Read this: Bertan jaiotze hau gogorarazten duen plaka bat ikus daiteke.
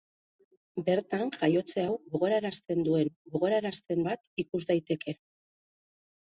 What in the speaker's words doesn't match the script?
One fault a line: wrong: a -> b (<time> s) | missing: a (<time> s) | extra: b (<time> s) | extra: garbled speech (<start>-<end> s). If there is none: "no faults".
wrong: plaka -> gogorarazten (3.3 s)